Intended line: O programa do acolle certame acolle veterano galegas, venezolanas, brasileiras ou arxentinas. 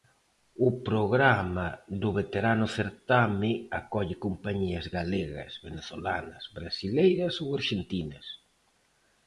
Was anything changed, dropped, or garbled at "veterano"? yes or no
yes